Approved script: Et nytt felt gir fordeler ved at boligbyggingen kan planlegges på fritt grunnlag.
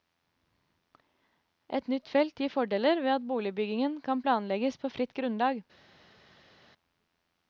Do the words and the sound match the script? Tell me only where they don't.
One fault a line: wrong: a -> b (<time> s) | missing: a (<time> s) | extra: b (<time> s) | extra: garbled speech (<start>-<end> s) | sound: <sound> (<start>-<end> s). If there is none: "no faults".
no faults